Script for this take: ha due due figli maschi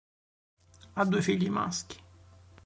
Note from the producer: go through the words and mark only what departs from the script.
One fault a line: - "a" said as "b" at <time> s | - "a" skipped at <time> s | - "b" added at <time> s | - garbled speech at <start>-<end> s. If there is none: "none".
- "due" skipped at 1.2 s